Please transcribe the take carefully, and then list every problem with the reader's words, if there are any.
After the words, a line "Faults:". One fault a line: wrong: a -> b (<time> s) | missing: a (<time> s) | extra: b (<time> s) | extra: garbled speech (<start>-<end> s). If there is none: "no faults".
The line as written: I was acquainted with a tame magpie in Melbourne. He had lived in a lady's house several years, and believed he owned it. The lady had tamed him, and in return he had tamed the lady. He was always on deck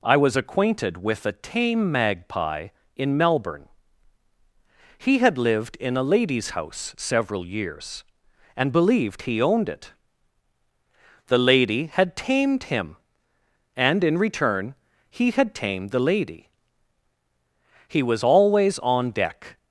I was acquainted with a tame magpie in Melbourne. He had lived in a lady's house several years, and believed he owned it. The lady had tamed him, and in return he had tamed the lady. He was always on deck
Faults:
no faults